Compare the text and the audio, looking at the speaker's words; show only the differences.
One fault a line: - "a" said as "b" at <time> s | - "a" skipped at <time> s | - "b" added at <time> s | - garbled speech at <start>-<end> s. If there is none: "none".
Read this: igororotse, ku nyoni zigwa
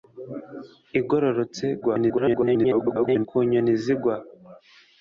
- garbled speech at 1.8-3.3 s